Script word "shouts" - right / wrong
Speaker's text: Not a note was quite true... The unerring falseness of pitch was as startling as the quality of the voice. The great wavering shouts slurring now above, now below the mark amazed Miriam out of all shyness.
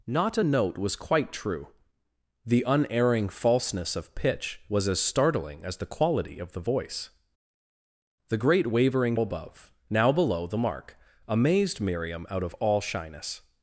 wrong